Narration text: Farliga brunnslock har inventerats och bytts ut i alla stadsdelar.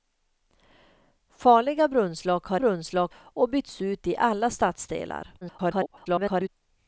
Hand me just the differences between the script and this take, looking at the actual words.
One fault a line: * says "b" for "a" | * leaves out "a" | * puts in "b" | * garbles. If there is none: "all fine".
* says "brunnslock" for "inventerats"
* garbles